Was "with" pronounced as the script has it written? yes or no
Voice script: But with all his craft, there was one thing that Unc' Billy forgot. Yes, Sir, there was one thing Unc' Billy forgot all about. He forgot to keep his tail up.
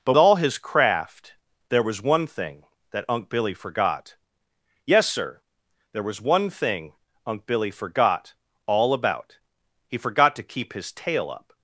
no